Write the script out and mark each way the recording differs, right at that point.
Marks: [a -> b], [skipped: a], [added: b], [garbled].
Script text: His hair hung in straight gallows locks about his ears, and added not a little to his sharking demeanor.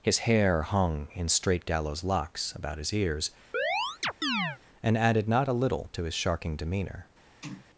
His hair hung in straight gallows locks about his ears, and added not a little to his sharking demeanor.